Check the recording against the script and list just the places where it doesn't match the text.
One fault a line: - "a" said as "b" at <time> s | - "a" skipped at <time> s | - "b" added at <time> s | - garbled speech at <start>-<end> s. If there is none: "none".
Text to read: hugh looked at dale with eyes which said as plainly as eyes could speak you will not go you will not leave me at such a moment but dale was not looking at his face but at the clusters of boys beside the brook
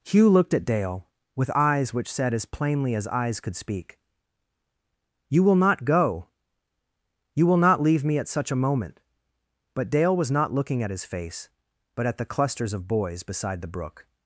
none